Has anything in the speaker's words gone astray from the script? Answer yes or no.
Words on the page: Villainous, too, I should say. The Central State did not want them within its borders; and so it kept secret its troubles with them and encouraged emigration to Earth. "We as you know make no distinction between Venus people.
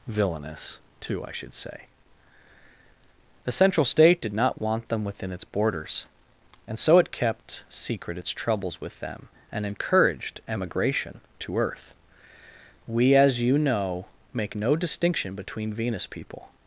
no